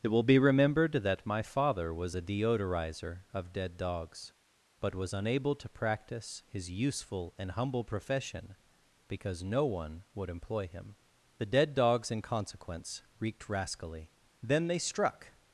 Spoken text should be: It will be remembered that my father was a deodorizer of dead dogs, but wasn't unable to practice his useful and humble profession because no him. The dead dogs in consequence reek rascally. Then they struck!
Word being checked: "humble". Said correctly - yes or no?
yes